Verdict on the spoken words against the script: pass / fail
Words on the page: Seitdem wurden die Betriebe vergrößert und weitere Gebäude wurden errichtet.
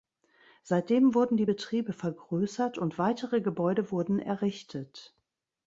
pass